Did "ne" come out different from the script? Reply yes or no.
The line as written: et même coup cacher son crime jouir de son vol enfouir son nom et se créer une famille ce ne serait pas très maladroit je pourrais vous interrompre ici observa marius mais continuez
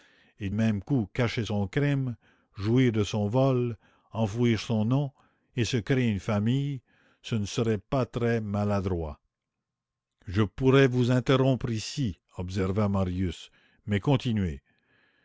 no